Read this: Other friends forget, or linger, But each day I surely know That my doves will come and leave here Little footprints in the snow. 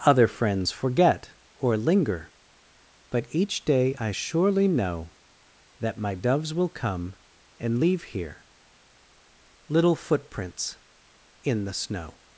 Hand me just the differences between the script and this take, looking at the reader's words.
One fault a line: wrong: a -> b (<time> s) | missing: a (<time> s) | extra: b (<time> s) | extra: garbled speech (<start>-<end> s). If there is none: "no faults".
no faults